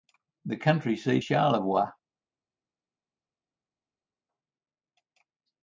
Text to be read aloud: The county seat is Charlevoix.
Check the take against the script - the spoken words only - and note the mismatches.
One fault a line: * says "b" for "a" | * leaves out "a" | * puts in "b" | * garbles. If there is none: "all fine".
* leaves out "is"